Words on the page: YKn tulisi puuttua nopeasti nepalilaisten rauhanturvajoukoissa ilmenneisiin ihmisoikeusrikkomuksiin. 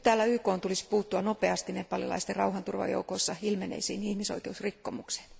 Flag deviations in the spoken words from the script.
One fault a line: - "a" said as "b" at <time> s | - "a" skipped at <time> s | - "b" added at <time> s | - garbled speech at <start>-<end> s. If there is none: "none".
none